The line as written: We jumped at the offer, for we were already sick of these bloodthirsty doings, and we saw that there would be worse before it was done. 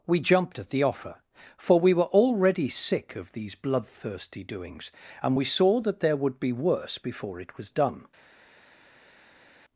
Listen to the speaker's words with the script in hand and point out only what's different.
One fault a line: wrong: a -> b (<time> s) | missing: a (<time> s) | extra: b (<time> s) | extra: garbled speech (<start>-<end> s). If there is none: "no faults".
no faults